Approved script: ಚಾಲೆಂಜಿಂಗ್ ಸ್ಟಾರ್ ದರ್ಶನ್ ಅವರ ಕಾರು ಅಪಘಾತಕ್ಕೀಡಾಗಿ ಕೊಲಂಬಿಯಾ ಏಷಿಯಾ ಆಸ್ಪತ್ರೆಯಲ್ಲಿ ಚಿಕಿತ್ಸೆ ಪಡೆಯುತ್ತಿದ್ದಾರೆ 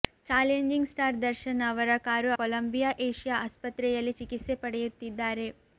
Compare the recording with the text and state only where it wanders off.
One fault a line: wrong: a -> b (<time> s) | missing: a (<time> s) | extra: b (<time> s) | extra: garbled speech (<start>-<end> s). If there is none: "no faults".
missing: ಅಪಘಾತಕ್ಕೀಡಾಗಿ (2.3 s)